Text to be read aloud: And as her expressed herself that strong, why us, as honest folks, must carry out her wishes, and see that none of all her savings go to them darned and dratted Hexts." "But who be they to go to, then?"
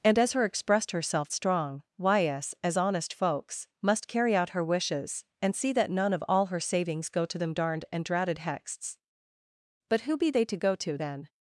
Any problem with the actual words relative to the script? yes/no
yes